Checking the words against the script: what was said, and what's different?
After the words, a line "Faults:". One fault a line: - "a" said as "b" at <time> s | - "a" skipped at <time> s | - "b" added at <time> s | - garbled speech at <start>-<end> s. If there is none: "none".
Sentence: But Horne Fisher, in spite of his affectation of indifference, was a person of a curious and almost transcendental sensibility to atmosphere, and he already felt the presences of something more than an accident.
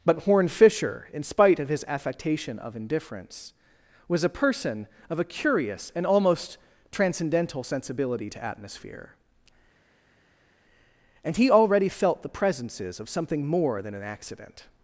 But Horne Fisher, in spite of his affectation of indifference, was a person of a curious and almost transcendental sensibility to atmosphere, and he already felt the presences of something more than an accident.
Faults:
none